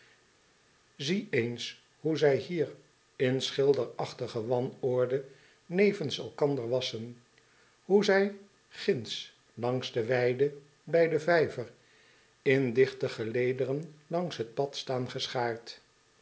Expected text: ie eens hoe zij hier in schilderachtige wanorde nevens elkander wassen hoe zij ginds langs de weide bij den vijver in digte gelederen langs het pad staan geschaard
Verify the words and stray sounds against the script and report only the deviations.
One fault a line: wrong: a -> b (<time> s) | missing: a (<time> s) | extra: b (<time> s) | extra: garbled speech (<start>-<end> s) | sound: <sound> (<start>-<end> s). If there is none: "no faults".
no faults